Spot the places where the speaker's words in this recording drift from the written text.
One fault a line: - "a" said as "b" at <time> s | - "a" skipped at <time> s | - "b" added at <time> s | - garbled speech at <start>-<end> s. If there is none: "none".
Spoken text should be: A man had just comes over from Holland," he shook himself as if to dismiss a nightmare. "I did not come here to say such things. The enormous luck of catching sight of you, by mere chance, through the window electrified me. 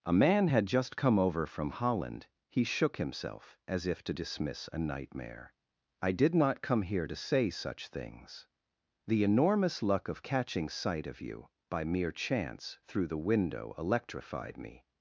- "comes" said as "come" at 1.0 s